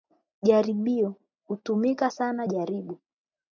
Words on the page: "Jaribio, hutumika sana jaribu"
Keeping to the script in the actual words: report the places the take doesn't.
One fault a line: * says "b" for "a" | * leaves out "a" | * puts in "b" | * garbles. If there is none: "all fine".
all fine